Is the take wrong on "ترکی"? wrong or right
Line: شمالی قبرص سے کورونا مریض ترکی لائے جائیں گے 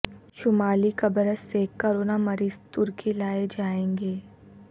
right